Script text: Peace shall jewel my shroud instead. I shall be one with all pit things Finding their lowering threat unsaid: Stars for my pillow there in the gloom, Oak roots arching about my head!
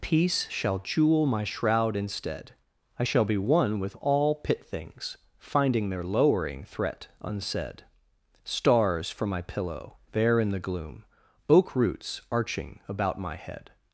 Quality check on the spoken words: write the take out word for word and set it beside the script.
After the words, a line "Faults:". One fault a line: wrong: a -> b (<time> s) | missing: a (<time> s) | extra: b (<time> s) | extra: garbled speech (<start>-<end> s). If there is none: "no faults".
Peace shall jewel my shroud instead. I shall be one with all pit things Finding their lowering threat unsaid: Stars for my pillow there in the gloom, Oak roots arching about my head!
Faults:
no faults